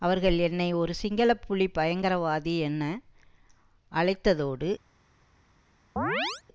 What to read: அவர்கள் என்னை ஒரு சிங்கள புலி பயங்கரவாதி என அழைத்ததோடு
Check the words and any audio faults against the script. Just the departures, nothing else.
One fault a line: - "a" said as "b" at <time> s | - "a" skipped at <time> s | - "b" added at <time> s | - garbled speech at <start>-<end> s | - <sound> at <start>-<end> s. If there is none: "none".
- chirp at 6.0-6.4 s